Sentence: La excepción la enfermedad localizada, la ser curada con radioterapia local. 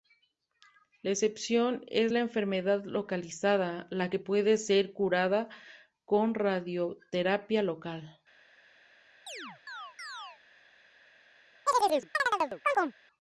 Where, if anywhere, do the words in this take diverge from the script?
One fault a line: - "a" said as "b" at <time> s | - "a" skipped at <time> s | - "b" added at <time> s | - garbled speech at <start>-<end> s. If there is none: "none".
- "es" added at 1.9 s
- "que puede" added at 4.1 s